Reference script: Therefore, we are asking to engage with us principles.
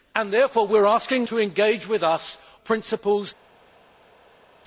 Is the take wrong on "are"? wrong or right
right